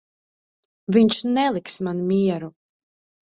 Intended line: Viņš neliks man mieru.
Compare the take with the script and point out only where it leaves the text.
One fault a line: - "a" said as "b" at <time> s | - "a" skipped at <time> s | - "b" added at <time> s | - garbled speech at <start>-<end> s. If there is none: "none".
none